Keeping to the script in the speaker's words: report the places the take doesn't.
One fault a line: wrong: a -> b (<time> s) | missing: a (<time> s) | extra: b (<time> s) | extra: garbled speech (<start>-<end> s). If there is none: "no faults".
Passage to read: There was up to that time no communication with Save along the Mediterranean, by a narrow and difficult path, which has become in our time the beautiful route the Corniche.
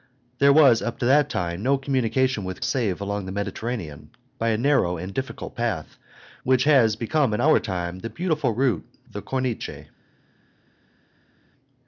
no faults